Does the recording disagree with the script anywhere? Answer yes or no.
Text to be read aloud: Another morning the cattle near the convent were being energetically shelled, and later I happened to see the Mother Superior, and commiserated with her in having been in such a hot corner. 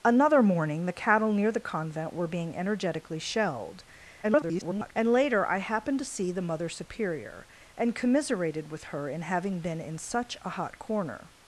yes